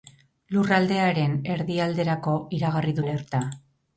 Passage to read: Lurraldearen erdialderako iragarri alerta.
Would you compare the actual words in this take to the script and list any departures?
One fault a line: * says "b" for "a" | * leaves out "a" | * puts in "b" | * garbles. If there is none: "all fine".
all fine